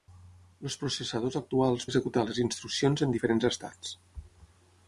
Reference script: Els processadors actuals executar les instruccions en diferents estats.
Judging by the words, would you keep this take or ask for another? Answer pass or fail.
pass